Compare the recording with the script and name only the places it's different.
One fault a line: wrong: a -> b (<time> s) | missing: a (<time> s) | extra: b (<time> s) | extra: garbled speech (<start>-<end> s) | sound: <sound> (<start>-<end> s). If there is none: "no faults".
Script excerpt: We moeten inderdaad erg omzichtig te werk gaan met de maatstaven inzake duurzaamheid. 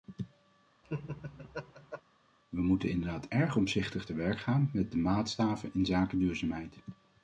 sound: laugh (0.8-2.0 s)